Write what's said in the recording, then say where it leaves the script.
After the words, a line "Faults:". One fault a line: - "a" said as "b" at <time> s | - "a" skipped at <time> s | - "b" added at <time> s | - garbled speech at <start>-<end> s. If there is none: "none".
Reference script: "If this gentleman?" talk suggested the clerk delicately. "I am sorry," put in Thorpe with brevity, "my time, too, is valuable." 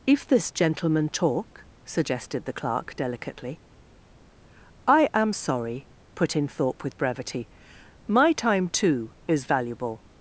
"If this gentleman?" talk suggested the clerk delicately. "I am sorry," put in Thorpe with brevity, "my time, too, is valuable."
Faults:
none